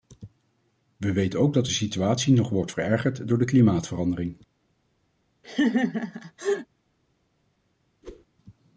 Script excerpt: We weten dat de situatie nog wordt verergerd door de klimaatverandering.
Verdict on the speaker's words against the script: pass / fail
fail